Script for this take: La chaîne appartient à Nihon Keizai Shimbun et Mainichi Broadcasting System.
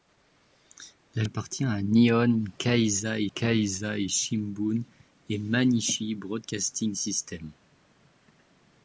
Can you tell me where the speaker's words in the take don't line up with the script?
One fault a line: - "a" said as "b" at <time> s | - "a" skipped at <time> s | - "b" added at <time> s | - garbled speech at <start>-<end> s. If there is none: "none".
- "chaîne" skipped at 1.2 s
- "Keizai" added at 3.3 s